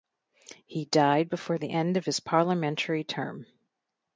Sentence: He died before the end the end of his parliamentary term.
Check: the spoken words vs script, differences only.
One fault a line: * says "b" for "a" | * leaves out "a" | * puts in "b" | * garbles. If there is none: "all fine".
* leaves out "the end"